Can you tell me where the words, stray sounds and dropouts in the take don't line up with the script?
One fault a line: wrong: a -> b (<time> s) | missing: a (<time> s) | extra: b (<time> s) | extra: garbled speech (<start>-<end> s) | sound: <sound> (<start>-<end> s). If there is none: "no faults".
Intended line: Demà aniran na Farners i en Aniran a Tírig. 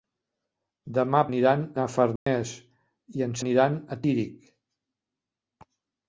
sound: dropout (2.2-2.3 s)